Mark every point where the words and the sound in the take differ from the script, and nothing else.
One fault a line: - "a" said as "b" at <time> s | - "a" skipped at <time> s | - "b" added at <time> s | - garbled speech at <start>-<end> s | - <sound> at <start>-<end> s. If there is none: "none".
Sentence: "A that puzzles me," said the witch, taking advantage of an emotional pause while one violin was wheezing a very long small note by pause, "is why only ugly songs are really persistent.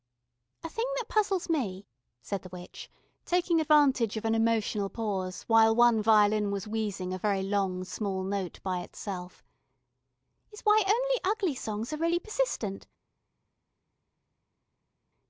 - "thing" added at 0.7 s
- "pause" said as "itself" at 8.8 s